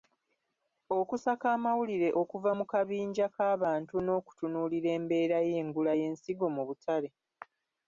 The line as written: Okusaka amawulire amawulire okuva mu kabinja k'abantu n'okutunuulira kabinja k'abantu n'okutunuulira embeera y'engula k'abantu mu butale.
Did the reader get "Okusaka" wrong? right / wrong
right